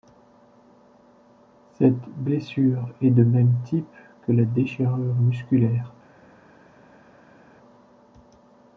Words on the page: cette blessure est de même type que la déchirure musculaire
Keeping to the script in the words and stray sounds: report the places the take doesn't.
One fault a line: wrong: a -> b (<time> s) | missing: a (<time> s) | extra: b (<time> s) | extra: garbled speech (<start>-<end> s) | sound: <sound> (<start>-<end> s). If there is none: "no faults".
no faults